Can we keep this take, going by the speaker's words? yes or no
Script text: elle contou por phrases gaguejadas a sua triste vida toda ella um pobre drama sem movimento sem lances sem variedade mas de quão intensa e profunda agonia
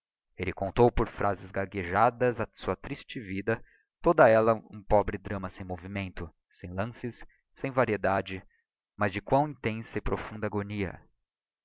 yes